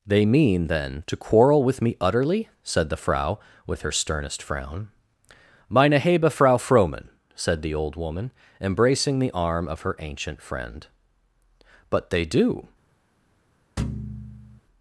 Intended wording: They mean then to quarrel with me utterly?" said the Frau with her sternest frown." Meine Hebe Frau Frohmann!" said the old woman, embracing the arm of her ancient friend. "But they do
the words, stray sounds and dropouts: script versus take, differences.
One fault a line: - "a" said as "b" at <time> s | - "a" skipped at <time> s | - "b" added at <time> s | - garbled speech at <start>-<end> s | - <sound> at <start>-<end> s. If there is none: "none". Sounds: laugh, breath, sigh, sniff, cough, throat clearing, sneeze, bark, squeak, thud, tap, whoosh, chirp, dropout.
- thud at 13.8-14.6 s